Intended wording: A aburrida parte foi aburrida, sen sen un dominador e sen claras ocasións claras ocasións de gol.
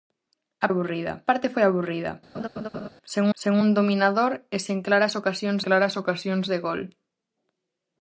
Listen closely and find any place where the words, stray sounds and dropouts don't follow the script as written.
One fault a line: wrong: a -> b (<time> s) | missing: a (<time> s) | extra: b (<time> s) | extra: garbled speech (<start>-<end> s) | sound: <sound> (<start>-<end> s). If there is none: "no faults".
sound: laugh (2.3-2.9 s)